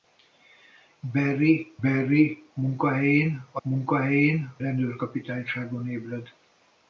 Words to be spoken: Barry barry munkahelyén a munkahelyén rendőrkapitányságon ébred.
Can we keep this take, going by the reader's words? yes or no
yes